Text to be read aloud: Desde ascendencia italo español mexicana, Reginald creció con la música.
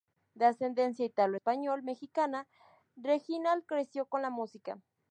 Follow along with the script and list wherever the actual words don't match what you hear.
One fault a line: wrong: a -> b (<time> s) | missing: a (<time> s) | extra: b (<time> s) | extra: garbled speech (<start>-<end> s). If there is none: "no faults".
wrong: Desde -> De (0.3 s)